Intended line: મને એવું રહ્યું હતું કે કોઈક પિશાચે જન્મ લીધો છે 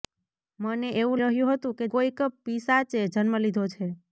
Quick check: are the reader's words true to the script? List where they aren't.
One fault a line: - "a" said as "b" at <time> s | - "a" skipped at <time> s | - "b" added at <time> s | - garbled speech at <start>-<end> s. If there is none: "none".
none